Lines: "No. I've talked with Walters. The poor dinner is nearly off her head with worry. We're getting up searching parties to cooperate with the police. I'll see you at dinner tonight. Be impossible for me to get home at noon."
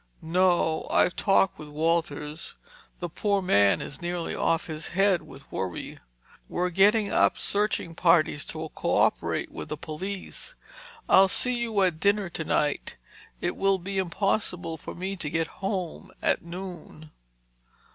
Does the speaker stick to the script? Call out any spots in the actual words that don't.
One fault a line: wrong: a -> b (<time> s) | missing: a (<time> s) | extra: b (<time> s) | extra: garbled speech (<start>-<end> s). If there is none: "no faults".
wrong: dinner -> man (3.4 s)
wrong: her -> his (4.7 s)
extra: It will (13.4 s)